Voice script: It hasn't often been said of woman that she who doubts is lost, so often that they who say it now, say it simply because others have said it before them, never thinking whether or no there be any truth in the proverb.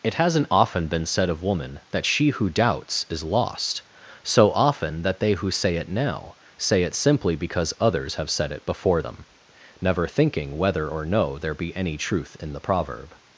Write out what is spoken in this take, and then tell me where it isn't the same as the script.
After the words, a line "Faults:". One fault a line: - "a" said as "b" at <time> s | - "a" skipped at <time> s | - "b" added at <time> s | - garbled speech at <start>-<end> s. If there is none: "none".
It hasn't often been said of woman that she who doubts is lost, so often that they who say it now, say it simply because others have said it before them, never thinking whether or no there be any truth in the proverb.
Faults:
none